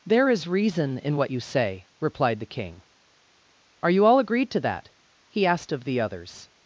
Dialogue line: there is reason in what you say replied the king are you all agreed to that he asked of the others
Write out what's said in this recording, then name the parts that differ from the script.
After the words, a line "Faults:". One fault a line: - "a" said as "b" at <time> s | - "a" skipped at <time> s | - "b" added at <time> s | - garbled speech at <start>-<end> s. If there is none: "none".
there is reason in what you say replied the king are you all agreed to that he asked of the others
Faults:
none